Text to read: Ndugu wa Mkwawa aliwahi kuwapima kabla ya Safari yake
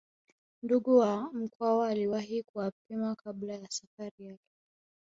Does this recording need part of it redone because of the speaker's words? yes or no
no